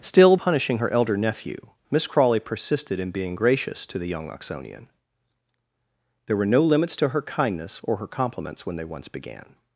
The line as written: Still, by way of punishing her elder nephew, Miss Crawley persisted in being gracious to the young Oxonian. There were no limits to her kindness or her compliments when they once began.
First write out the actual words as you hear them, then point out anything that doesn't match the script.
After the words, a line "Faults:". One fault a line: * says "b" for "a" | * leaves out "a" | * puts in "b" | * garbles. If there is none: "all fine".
Still, punishing her elder nephew, Miss Crawley persisted in being gracious to the young Oxonian. There were no limits to her kindness or her compliments when they once began.
Faults:
* leaves out "by way of"